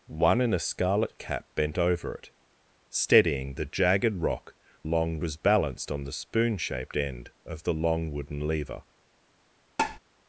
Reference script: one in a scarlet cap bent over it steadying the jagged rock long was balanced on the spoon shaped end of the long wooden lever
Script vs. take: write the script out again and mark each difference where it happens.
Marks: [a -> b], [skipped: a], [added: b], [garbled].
one in a scarlet cap bent over it steadying the jagged rock long was balanced on the spoon shaped end of the long wooden lever